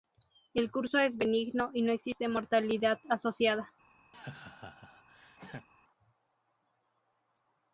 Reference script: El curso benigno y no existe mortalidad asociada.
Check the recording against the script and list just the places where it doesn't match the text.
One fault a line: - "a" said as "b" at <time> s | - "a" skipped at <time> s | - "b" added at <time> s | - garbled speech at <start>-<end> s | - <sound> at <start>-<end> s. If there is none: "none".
- "es" added at 1.0 s
- laugh at 4.1-5.7 s